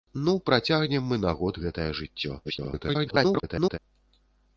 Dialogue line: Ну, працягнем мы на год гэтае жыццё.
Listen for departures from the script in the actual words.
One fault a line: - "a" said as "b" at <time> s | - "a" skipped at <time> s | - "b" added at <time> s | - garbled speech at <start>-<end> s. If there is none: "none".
- garbled speech at 2.4-3.8 s